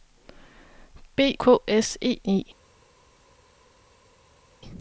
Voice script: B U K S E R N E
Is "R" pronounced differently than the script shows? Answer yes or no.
yes